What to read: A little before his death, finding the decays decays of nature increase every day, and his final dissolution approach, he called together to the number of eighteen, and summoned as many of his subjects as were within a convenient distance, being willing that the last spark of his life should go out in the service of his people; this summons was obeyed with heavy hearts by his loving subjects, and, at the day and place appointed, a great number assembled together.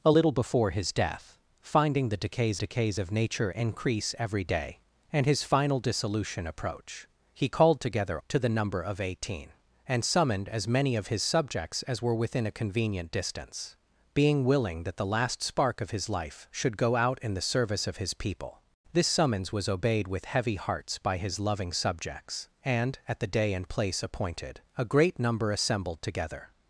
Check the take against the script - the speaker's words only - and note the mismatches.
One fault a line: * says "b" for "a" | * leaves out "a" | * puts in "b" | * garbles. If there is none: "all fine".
all fine